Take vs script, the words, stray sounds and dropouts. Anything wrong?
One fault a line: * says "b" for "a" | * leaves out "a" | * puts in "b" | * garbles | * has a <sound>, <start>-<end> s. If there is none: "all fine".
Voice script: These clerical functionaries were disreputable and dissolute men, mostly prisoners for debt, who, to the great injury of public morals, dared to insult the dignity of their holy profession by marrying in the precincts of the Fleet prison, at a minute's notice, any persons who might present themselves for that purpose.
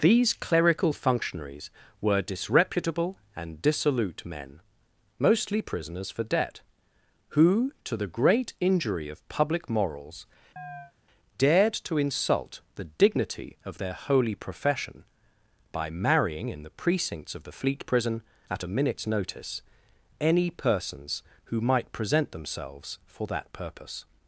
* has a chirp, 10.6-10.9 s